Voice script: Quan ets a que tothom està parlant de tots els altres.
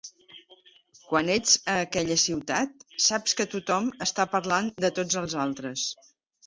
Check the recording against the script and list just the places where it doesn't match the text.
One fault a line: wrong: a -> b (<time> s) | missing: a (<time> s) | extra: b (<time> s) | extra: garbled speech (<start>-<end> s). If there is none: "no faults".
extra: aquella ciutat saps (1.8 s)